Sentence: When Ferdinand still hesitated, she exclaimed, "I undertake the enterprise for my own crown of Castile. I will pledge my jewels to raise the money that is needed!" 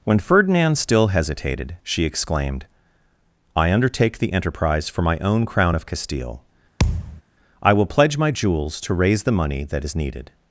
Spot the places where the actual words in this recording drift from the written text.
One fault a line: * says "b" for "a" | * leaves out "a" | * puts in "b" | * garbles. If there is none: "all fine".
all fine